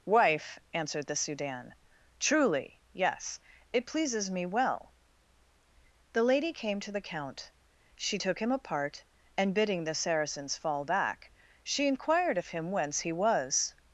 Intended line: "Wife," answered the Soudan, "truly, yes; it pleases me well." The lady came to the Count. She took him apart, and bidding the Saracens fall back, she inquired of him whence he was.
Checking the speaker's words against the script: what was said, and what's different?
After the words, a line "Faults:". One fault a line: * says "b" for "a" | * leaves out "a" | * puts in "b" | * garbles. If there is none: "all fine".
"Wife," answered the Soudan, "truly, yes; it pleases me well." The lady came to the Count. She took him apart, and bidding the Saracens fall back, she inquired of him whence he was.
Faults:
all fine